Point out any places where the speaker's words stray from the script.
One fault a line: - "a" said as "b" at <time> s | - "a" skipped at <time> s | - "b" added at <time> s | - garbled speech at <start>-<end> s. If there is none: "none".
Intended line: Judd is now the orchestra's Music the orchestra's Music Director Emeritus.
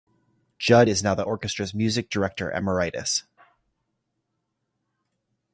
- "the orchestra's Music" skipped at 2.1 s